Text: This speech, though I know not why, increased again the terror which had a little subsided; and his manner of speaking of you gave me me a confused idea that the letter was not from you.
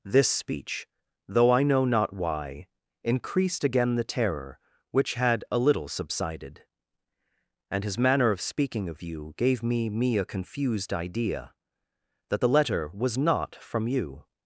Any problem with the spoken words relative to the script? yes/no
no